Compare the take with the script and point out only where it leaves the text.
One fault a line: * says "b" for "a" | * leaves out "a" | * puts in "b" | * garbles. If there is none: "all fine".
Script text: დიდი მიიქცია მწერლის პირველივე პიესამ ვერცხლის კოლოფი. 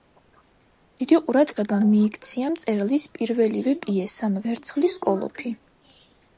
* puts in "ყურადღება"